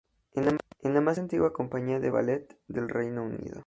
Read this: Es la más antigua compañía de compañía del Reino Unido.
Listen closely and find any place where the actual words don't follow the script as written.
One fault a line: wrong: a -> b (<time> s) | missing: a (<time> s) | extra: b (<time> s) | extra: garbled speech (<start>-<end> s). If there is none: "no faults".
wrong: compañía -> ballet (2.1 s)